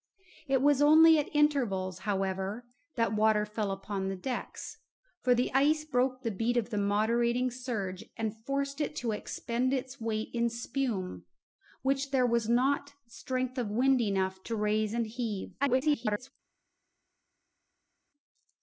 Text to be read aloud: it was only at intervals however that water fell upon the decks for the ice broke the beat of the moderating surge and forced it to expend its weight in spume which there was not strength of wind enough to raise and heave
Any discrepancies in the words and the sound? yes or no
yes